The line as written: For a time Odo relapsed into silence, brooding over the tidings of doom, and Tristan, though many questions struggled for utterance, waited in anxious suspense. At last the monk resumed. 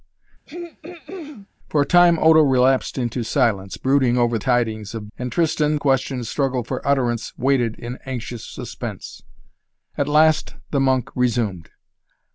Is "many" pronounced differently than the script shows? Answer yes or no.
yes